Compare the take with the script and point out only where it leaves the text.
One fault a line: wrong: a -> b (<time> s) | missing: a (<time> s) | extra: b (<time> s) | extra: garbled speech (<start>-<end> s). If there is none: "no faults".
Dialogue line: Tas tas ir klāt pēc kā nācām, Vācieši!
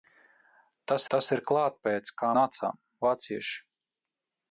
no faults